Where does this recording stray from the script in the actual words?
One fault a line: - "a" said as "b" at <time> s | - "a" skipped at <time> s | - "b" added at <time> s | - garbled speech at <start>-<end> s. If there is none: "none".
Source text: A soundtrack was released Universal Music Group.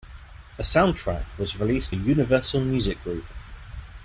none